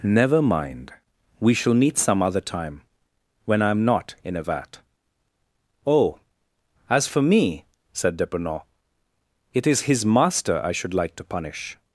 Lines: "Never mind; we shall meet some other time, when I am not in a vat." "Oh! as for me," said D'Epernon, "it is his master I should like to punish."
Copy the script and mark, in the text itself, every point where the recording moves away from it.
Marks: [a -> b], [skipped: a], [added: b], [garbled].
"Never mind; we shall meet some other time, when I am not in a vat." "Oh! as for me," said D'Epernon, "it is his master I should like to punish."